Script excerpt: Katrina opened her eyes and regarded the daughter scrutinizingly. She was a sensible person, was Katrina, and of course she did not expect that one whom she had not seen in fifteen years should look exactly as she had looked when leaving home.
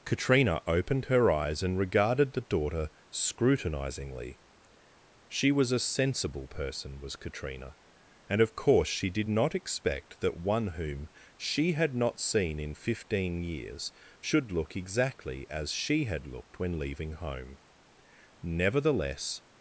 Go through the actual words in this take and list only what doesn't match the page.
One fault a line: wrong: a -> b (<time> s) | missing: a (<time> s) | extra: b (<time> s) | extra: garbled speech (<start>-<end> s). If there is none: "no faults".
extra: Nevertheless (18.4 s)